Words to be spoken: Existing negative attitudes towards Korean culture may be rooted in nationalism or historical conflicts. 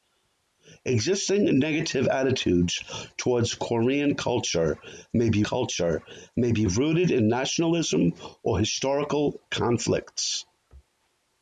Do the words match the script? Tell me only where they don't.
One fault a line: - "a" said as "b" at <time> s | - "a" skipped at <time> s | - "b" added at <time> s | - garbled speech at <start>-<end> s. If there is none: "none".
- "culture may be" added at 5.4 s